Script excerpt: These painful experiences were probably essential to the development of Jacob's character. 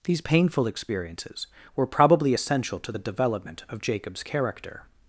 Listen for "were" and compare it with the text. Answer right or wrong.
right